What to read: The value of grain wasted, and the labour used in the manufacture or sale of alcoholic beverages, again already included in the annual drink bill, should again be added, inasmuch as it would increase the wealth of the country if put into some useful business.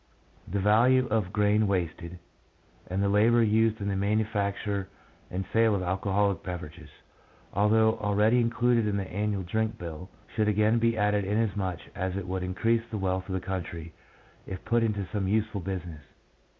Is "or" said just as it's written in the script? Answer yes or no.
no